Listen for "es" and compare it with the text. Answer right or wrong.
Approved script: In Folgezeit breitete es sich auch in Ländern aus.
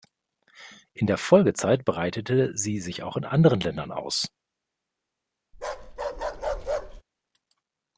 wrong